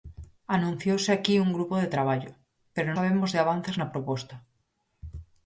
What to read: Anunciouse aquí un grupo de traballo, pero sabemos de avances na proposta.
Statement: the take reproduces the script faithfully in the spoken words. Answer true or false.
true